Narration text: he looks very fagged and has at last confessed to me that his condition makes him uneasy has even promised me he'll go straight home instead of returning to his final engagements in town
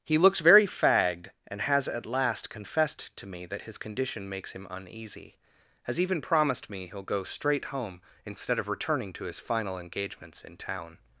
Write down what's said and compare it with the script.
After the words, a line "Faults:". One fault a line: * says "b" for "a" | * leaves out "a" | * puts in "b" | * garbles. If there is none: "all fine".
he looks very fagged and has at last confessed to me that his condition makes him uneasy has even promised me he'll go straight home instead of returning to his final engagements in town
Faults:
all fine